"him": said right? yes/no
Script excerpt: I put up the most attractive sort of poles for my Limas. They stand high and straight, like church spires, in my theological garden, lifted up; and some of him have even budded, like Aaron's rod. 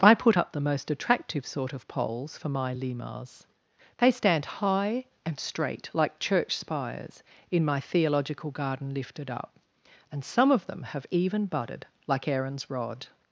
no